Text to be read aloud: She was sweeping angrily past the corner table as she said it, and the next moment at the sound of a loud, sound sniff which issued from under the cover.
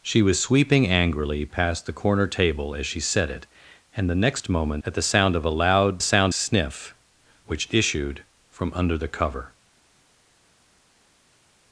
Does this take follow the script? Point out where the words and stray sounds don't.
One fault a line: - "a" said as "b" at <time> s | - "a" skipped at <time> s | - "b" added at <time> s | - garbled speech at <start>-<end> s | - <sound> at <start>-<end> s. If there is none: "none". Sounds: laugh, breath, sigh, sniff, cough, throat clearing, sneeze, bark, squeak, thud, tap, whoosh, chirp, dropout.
none